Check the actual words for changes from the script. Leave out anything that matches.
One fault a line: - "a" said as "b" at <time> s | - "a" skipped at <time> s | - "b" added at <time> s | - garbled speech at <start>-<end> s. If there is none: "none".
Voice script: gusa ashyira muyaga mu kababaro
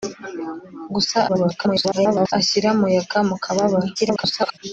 - garbled speech at 1.3-2.3 s
- garbled speech at 4.0-4.6 s